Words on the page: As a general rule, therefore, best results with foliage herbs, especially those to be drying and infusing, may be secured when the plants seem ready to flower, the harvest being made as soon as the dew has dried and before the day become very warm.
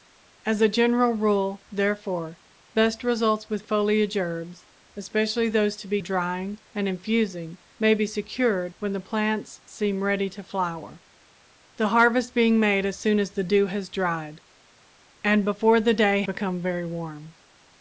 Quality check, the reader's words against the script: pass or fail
pass